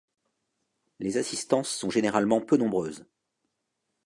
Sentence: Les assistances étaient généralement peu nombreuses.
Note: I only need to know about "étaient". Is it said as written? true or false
false